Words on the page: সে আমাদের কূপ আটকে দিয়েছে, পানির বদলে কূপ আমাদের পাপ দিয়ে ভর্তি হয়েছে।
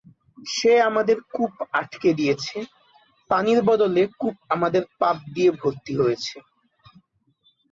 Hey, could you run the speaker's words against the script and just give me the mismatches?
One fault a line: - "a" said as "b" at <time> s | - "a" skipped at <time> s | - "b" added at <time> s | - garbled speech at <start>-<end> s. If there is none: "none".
none